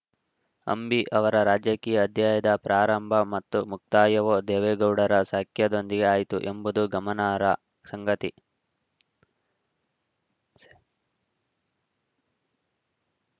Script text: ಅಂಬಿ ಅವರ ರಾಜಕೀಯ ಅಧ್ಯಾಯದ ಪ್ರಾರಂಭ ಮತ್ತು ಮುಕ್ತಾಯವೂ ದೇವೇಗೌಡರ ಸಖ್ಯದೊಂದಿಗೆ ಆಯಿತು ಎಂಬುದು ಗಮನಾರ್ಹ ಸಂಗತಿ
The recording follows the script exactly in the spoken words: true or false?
true